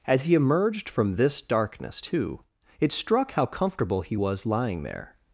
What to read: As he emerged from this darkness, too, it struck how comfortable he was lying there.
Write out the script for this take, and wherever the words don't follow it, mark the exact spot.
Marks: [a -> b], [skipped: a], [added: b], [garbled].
As he emerged from this darkness, too, it struck how comfortable he was lying there.